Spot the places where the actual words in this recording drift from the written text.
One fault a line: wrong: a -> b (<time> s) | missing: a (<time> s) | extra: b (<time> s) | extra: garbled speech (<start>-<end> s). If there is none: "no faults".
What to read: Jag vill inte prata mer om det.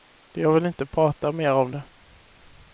no faults